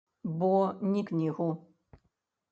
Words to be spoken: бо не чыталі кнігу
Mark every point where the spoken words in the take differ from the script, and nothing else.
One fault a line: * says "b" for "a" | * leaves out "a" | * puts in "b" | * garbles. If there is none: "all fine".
* leaves out "чыталі"